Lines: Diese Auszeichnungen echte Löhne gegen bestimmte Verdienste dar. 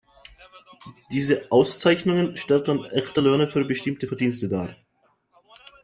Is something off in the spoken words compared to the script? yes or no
yes